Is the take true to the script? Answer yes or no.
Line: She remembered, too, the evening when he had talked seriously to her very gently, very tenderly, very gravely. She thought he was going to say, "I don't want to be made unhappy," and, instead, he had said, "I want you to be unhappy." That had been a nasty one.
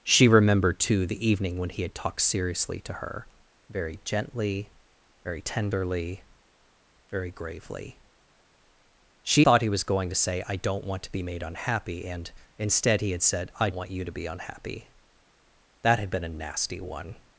yes